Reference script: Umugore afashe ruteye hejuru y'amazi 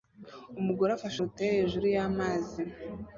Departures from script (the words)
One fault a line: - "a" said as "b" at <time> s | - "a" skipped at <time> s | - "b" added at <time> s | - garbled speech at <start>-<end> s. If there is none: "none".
none